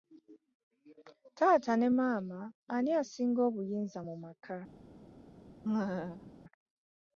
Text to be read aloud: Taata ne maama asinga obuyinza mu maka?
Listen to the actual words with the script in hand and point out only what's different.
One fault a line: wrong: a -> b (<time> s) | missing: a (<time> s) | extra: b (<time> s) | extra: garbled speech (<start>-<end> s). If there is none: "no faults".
extra: ani (2.8 s)